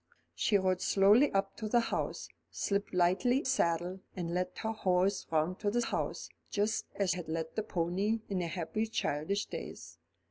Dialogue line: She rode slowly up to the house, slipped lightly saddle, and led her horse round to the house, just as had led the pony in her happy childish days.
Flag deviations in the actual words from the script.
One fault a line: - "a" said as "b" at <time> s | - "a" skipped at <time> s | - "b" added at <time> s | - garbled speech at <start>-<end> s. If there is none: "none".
none